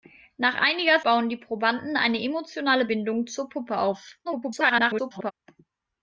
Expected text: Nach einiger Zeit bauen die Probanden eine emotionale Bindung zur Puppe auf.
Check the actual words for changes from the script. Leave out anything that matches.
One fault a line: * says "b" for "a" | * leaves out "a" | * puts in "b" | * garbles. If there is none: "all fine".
* leaves out "Zeit"
* garbles